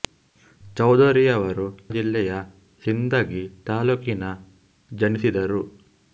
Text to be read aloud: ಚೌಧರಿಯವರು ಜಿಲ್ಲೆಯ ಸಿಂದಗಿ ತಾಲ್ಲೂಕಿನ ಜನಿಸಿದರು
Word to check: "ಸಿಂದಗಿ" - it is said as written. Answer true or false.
true